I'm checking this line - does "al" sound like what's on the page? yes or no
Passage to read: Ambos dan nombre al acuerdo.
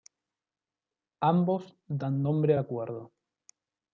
yes